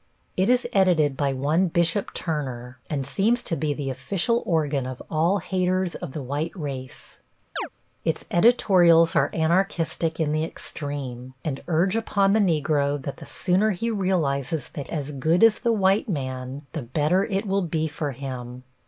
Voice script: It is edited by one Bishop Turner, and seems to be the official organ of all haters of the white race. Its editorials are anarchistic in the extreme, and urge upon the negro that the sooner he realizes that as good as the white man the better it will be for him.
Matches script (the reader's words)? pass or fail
pass